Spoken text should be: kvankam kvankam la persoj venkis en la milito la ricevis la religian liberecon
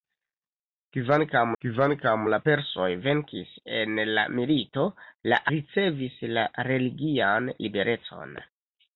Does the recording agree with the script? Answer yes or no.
yes